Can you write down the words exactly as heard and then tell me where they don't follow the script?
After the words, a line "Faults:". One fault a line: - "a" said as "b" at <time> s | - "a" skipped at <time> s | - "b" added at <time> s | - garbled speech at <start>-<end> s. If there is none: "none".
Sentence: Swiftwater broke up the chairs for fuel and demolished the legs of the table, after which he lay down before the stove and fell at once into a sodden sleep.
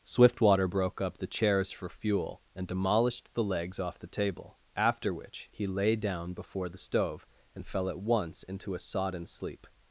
Swiftwater broke up the chairs for fuel and demolished the legs off the table, after which he lay down before the stove and fell at once into a sodden sleep.
Faults:
- "of" said as "off" at 3.8 s